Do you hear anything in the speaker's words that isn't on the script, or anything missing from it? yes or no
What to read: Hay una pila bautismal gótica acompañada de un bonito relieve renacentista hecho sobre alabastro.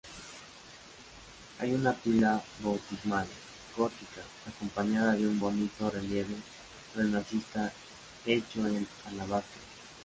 yes